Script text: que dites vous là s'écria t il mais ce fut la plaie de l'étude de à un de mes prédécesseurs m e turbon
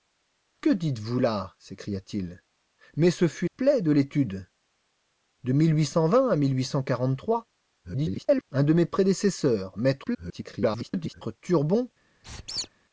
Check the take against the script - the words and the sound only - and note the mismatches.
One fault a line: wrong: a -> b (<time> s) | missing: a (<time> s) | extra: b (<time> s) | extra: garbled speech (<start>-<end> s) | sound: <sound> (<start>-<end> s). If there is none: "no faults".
missing: la (3.5 s)
extra: garbled speech (7.8-8.4 s)
extra: garbled speech (10.0-11.2 s)
sound: squeak (12.2-12.7 s)